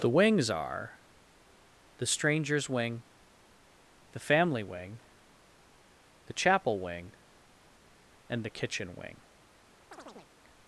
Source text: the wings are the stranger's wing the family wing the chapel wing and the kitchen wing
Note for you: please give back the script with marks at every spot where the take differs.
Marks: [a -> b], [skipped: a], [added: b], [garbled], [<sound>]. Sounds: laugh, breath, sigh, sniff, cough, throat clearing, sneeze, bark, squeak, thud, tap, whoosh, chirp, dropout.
the wings are the stranger's wing the family wing the chapel wing and the kitchen wing [chirp]